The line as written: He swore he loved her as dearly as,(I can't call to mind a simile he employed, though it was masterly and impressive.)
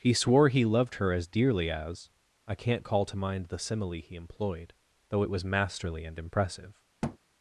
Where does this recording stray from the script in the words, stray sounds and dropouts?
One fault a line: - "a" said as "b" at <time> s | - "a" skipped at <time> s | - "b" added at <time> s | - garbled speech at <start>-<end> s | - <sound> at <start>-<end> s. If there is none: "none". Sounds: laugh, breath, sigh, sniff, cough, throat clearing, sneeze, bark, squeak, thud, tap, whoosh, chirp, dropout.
- "a" said as "the" at 3.5 s
- thud at 7.0-7.2 s